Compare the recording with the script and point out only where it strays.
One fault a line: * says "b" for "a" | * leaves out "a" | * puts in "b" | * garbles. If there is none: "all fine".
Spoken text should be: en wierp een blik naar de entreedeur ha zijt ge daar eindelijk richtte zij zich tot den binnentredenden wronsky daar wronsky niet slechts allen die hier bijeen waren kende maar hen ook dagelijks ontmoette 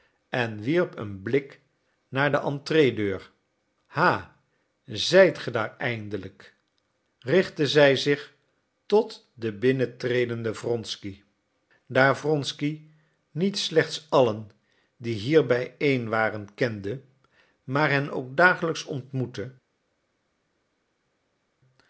all fine